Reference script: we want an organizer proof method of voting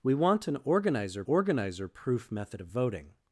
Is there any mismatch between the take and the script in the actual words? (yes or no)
yes